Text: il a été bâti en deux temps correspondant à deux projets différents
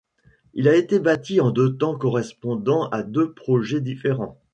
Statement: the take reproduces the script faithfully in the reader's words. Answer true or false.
true